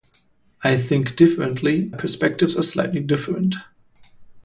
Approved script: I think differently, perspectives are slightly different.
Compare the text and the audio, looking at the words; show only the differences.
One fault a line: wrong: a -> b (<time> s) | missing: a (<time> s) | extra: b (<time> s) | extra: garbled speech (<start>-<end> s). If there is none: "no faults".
no faults